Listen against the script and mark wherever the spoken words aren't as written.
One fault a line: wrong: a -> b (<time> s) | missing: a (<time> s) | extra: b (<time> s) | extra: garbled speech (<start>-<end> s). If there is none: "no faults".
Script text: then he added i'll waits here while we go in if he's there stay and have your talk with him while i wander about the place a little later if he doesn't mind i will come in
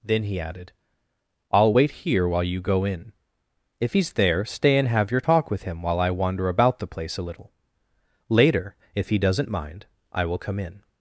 wrong: waits -> wait (1.7 s)
wrong: we -> you (2.4 s)